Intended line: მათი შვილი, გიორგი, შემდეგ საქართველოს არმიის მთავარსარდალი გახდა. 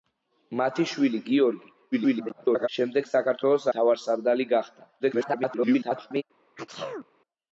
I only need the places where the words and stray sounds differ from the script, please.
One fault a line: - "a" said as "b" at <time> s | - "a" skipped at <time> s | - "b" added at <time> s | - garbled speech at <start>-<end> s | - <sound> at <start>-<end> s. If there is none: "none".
- garbled speech at 1.9-2.7 s
- "არმიის" skipped at 3.7 s
- garbled speech at 5.0-6.2 s
- sneeze at 6.6-7.1 s